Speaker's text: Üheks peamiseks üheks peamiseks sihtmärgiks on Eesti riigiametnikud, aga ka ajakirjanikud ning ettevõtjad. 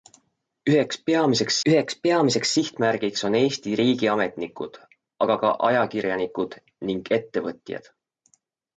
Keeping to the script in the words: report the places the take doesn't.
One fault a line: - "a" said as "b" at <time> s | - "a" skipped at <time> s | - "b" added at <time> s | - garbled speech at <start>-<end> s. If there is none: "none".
none